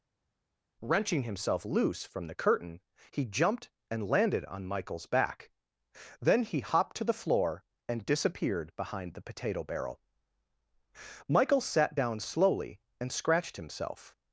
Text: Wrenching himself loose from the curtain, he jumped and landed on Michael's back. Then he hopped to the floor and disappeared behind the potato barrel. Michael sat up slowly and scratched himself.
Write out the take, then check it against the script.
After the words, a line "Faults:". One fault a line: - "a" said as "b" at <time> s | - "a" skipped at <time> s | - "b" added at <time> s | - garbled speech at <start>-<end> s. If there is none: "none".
Wrenching himself loose from the curtain, he jumped and landed on Michael's back. Then he hopped to the floor and disappeared behind the potato barrel. Michael sat down slowly and scratched himself.
Faults:
- "up" said as "down" at 11.9 s